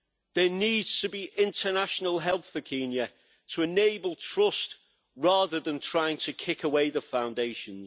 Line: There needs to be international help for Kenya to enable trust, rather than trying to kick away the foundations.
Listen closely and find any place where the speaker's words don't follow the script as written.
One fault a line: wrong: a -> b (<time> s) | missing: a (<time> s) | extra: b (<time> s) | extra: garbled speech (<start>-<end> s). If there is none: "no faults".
no faults